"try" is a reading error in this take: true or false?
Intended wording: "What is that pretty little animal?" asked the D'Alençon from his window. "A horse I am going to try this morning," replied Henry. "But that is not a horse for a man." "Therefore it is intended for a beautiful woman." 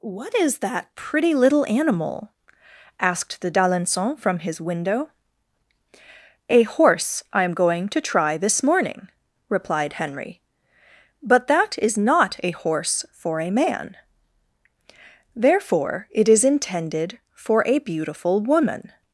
false